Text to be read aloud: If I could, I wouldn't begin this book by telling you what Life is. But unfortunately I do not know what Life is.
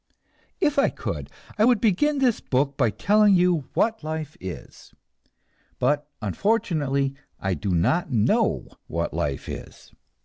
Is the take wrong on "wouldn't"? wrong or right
wrong